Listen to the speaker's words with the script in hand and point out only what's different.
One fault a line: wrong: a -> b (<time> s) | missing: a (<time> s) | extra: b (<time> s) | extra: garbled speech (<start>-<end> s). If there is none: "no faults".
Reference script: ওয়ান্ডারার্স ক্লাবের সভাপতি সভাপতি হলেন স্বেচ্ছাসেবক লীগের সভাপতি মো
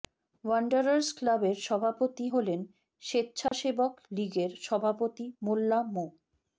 missing: সভাপতি (2.2 s)
extra: মোল্লা (5.4 s)